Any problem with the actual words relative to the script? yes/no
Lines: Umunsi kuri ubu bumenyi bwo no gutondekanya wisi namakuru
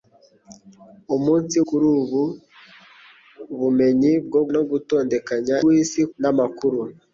no